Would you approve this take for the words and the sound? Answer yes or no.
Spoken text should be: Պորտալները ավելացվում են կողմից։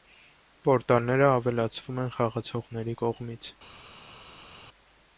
no